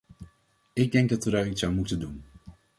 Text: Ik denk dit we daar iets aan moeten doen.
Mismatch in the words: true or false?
true